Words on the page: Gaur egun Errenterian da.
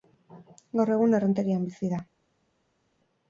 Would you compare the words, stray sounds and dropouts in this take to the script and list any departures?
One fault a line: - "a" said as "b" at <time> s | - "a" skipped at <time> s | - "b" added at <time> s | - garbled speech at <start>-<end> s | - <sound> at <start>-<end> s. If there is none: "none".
- "bizi" added at 1.7 s